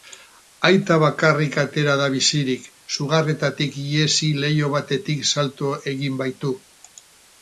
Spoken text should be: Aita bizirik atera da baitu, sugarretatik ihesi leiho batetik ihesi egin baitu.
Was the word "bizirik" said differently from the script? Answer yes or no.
yes